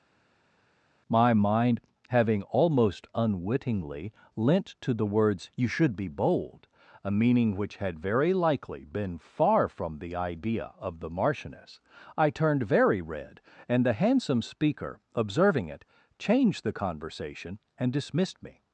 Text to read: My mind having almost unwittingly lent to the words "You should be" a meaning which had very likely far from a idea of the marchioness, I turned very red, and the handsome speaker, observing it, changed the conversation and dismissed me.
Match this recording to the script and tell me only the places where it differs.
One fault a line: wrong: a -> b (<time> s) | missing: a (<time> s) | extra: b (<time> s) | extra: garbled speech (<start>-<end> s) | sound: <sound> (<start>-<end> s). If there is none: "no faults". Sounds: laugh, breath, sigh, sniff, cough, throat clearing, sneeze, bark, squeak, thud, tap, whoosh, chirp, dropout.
extra: bold (6.1 s)
extra: been (8.8 s)
wrong: a -> the (10.0 s)